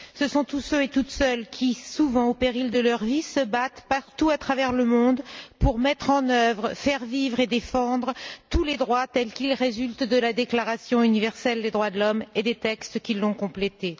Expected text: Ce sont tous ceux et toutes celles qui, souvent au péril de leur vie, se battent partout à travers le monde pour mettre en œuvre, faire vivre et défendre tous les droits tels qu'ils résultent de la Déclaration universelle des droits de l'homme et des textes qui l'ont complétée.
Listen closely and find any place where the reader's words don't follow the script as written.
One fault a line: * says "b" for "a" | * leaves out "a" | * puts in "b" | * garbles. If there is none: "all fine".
all fine